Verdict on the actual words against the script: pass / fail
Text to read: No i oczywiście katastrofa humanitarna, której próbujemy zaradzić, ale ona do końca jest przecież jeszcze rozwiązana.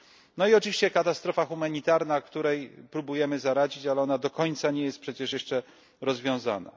fail